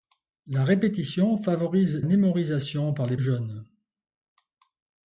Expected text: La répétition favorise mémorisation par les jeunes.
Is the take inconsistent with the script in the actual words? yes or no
no